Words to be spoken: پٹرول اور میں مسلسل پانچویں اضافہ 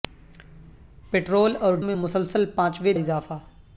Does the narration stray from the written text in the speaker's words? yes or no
no